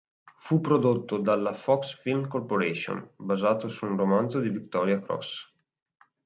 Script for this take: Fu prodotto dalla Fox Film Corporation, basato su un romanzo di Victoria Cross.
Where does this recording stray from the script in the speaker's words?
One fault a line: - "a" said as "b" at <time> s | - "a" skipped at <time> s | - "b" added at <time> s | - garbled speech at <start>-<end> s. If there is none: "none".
none